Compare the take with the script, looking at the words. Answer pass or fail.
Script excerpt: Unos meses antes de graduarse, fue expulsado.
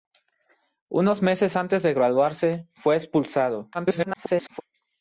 fail